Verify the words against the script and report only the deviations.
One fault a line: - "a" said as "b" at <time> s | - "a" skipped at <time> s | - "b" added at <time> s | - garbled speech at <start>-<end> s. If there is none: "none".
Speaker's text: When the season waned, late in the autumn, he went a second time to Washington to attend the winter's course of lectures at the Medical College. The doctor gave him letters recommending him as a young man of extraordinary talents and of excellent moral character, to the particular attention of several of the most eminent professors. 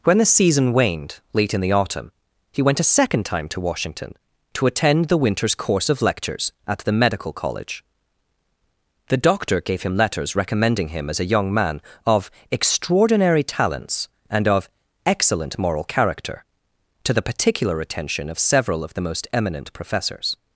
none